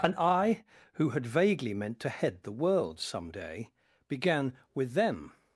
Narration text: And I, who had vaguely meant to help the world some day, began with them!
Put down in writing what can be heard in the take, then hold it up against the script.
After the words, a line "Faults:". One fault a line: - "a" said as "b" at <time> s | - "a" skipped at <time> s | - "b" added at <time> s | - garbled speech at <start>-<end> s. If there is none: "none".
And I, who had vaguely meant to head the world some day, began with them!
Faults:
- "help" said as "head" at 2.1 s